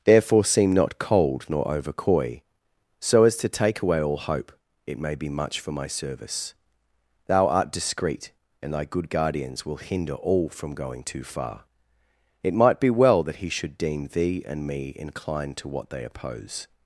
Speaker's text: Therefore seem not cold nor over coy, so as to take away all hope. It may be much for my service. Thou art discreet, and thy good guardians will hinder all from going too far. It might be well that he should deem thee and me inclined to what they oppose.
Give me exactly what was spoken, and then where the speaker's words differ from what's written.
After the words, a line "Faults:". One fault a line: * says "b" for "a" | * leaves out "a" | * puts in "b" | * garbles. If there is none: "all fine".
Therefore seem not cold nor over coy, so as to take away all hope. It may be much for my service. Thou art discreet, and thy good guardians will hinder all from going too far. It might be well that he should deem thee and me inclined to what they oppose.
Faults:
all fine